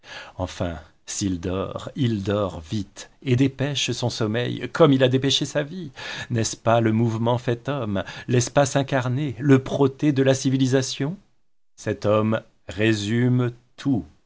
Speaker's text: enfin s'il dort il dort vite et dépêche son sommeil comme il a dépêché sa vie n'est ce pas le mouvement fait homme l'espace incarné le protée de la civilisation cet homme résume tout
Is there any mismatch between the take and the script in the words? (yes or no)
no